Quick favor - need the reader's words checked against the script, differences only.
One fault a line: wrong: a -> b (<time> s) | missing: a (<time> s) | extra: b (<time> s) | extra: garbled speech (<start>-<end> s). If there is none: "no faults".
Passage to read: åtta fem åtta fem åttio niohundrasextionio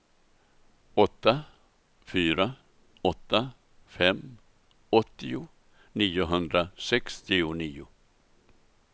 wrong: fem -> fyra (2.0 s)